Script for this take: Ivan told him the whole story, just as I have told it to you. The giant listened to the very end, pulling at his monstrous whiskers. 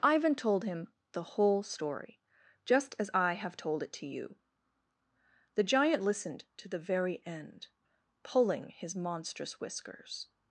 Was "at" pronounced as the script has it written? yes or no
no